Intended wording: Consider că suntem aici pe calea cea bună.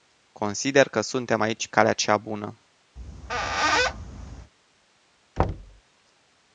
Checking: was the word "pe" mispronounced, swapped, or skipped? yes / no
yes